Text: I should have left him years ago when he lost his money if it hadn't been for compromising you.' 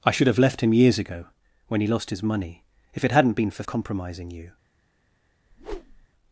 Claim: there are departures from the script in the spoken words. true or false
false